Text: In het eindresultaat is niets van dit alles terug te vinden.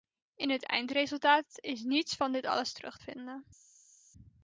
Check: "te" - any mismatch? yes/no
yes